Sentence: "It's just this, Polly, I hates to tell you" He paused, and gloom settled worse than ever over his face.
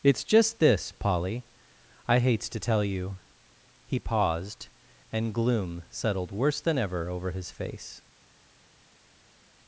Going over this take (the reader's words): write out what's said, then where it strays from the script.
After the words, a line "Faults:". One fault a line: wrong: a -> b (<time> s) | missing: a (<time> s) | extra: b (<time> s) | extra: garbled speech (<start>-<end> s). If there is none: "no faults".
"It's just this, Polly, I hates to tell you" He paused, and gloom settled worse than ever over his face.
Faults:
no faults